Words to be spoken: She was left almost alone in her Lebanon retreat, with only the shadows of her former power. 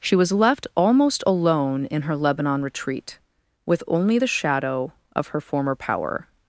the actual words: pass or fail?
fail